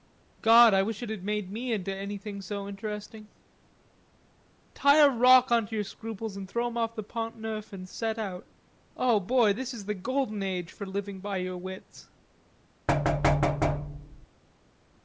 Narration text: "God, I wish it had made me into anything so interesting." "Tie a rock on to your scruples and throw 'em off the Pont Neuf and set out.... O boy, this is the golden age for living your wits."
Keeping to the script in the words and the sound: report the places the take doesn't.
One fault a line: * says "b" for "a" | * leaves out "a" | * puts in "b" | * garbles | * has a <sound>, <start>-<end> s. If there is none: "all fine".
* puts in "by"
* has a thud, 12.9-14.3 s